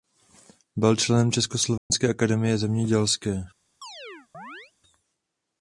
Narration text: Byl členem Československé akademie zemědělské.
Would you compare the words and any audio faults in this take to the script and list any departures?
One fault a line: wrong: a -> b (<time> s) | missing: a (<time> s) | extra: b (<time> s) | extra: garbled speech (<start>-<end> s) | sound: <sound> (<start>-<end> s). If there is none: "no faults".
sound: dropout (1.8-1.9 s)
sound: chirp (3.8-4.7 s)